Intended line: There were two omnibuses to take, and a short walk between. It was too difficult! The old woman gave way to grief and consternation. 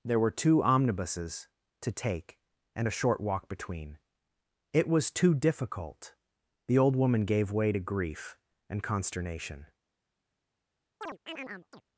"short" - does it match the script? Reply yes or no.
yes